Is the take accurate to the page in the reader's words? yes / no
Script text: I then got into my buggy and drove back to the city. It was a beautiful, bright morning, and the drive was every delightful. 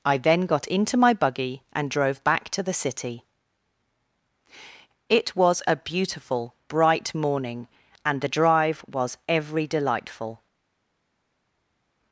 yes